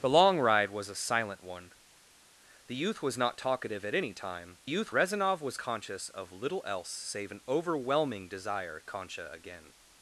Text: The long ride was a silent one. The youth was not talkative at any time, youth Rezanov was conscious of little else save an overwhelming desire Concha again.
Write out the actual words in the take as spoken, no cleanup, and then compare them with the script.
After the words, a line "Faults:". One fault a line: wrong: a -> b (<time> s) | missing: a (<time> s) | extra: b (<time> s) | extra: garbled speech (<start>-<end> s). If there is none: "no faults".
The long ride was a silent one. The youth was not talkative at any time, youth Rezanov was conscious of little else save an overwhelming desire Concha again.
Faults:
no faults